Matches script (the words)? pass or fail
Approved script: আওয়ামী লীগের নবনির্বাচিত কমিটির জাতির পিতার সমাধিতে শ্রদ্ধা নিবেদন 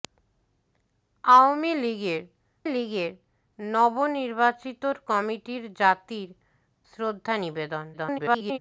fail